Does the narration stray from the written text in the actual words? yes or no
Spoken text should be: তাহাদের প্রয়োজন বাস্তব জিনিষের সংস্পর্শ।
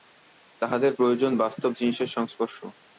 no